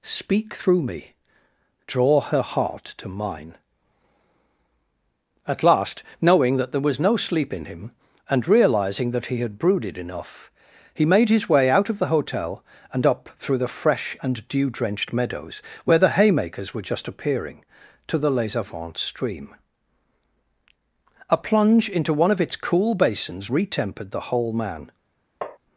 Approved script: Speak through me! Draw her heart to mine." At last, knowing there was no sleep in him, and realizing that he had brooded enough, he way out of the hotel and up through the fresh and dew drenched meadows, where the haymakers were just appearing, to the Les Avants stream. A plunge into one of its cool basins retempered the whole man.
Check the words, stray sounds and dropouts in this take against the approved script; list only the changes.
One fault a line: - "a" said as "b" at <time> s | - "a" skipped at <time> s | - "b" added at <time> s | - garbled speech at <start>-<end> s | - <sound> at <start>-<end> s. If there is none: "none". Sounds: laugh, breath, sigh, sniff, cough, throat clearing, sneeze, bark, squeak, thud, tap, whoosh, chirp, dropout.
- "that" added at 6.6 s
- "made his" added at 11.1 s
- tap at 25.4-25.6 s